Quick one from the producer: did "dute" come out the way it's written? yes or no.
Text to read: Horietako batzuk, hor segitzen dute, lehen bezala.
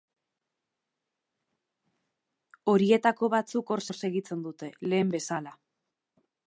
yes